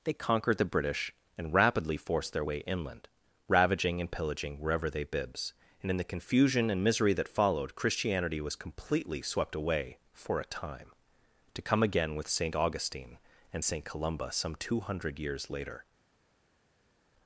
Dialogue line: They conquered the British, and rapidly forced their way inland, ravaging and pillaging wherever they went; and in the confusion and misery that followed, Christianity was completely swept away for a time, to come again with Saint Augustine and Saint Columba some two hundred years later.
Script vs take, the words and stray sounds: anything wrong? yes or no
yes